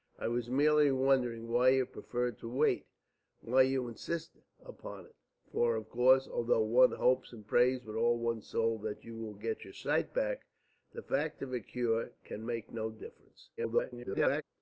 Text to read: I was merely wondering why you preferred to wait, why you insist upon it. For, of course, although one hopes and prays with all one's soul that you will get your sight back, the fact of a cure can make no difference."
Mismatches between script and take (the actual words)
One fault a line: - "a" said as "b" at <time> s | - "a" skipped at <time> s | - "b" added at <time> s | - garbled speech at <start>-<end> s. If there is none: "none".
- garbled speech at 13.6-14.4 s